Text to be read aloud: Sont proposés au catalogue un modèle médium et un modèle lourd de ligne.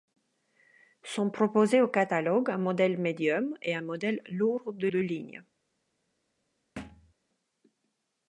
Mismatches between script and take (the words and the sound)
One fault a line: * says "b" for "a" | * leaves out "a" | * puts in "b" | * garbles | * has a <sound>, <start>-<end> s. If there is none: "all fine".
* puts in "de"
* has a thud, 6.8-7.1 s